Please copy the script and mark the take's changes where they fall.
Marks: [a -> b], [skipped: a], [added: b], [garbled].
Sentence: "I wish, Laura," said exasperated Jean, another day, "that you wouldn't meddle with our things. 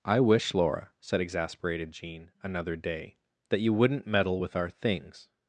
"I wish, Laura," said exasperated Jean, another day, "that you wouldn't meddle with our things.